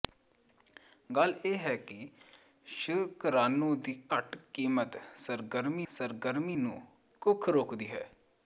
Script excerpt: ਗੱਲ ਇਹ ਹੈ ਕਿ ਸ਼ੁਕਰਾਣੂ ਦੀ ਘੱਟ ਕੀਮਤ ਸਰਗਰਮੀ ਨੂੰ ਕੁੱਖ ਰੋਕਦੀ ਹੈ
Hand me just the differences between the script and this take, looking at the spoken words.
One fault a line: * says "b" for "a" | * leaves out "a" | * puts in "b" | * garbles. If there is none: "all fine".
* puts in "ਸਰਗਰਮੀ"